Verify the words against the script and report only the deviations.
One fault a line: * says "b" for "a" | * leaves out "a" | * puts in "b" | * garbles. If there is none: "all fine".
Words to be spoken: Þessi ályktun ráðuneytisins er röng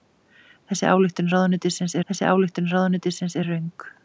* puts in "þessi ályktun ráðuneytisins"